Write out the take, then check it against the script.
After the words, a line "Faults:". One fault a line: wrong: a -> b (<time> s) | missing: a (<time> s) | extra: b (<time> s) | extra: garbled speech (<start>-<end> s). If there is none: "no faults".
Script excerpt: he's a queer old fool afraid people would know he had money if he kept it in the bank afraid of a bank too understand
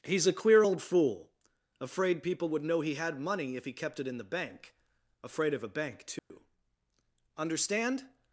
he's a queer old fool afraid people would know he had money if he kept it in the bank afraid of a bank too understand
Faults:
no faults